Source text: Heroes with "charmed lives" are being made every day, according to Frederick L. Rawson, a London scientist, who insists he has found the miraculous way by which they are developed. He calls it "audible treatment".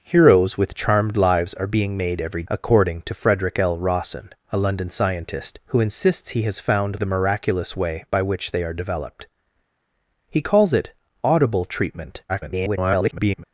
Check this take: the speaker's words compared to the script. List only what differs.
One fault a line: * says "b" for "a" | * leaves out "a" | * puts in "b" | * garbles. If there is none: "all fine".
* leaves out "day"
* garbles